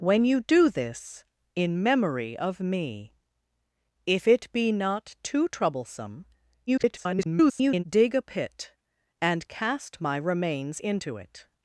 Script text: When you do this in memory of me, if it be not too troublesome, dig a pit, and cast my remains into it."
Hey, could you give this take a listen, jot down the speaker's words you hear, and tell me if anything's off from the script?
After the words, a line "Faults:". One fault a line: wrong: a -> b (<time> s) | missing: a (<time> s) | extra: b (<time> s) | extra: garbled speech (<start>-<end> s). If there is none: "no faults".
When you do this in memory of me, if it be not too troublesome, [garbled] dig a pit, and cast my remains into it."
Faults:
extra: garbled speech (6.7-7.8 s)